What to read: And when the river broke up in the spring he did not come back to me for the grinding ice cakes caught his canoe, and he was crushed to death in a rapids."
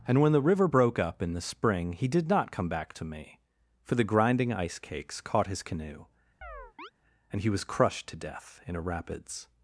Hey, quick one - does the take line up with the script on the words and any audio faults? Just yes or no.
no